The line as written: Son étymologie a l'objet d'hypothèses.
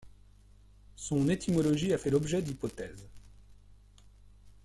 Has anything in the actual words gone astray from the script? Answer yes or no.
yes